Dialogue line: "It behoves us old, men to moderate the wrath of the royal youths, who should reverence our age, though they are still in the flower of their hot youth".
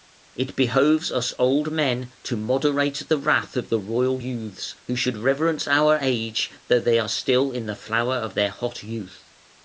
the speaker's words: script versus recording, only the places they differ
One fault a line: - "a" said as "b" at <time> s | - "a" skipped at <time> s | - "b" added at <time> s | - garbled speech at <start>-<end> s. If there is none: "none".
none